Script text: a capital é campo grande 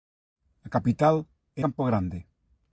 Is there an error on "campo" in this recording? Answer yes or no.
no